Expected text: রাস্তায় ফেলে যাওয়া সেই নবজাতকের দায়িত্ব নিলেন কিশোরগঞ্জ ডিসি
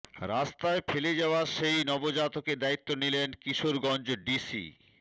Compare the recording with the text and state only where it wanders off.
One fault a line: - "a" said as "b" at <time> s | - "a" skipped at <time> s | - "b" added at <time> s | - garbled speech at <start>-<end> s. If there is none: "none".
none